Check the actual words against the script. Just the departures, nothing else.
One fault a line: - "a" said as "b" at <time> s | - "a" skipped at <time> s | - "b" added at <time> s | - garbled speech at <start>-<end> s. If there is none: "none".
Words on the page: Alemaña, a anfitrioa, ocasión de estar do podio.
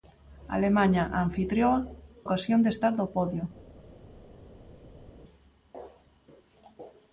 none